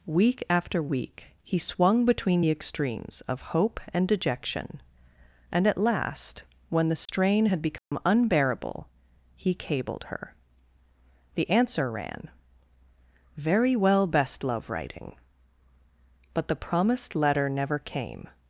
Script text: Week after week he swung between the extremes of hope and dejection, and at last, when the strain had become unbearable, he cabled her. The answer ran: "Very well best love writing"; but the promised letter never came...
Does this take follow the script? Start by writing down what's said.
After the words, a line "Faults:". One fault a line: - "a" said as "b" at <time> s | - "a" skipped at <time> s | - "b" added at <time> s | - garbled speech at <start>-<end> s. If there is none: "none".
Week after week he swung between the extremes of hope and dejection, and at last, when the strain had become unbearable, he cabled her. The answer ran: "Very well best love writing"; but the promised letter never came...
Faults:
none